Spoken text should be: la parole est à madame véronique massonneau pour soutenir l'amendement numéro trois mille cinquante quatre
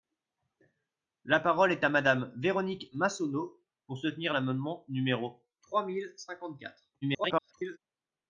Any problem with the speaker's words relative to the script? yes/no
yes